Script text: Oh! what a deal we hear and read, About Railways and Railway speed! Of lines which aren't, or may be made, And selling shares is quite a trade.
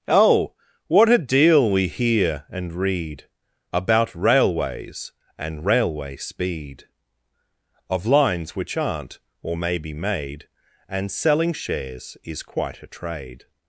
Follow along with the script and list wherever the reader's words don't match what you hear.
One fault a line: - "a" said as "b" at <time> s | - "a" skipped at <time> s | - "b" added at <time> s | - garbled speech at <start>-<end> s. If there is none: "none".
none